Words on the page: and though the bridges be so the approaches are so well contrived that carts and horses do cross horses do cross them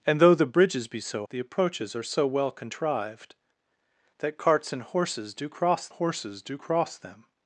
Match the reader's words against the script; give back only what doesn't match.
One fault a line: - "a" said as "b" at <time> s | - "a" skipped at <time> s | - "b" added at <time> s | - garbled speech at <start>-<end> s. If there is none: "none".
none